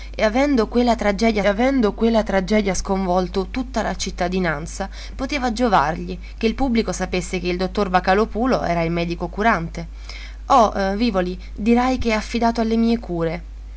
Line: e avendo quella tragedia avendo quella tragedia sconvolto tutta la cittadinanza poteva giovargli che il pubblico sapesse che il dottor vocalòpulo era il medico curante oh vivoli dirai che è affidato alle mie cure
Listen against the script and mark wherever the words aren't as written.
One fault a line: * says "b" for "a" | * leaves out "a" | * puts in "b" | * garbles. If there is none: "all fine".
all fine